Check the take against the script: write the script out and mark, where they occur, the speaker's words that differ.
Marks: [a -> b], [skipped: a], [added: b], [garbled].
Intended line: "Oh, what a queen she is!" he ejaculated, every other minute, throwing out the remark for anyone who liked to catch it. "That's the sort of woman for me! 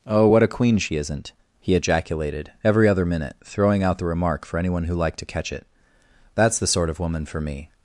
"Oh, what a queen she [is!" -> isn't] he ejaculated, every other minute, throwing out the remark for anyone who liked to catch it. "That's the sort of woman for me!